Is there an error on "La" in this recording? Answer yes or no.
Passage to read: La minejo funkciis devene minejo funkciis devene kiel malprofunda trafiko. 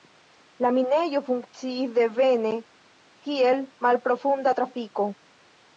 no